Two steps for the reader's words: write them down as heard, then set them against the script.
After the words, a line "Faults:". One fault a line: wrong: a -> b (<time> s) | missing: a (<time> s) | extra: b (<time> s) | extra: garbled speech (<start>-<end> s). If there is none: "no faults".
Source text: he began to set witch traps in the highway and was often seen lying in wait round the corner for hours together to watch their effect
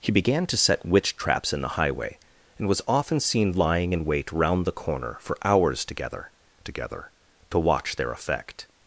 he began to set witch traps in the highway and was often seen lying in wait round the corner for hours together together to watch their effect
Faults:
extra: together (6.6 s)